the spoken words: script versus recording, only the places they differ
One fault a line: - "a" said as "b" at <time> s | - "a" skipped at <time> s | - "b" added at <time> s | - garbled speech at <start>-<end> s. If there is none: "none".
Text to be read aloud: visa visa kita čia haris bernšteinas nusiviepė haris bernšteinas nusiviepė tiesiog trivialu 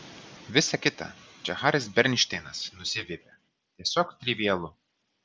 - "visa" skipped at 0.8 s
- "haris bernšteinas nusiviepė" skipped at 3.3 s